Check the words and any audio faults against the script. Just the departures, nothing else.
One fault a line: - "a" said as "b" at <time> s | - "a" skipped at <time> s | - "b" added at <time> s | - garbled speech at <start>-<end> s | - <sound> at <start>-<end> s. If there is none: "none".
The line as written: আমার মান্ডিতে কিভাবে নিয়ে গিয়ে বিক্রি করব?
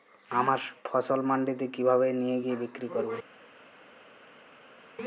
- "ফসল" added at 0.8 s